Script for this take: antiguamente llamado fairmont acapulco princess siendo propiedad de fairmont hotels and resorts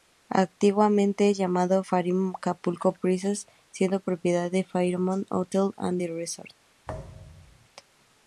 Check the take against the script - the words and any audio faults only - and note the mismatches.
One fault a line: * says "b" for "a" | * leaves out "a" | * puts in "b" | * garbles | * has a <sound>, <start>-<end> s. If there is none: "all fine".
* has a thud, 6.9-7.7 s